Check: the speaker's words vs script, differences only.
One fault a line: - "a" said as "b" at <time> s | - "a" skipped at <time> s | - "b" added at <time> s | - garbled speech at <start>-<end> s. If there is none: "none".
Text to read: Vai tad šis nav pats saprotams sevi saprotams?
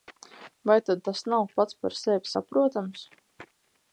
- "šis" said as "tas" at 1.1 s
- "saprotams" said as "par" at 1.8 s